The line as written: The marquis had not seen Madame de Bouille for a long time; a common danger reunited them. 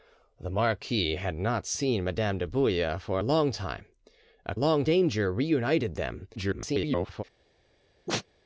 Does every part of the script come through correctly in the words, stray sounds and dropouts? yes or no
no